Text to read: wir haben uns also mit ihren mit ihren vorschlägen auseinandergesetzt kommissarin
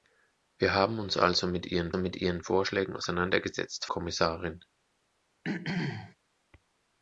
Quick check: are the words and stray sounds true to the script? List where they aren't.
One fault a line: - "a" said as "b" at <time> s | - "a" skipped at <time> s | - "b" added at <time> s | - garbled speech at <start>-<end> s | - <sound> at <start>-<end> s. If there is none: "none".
- throat clearing at 5.4-6.2 s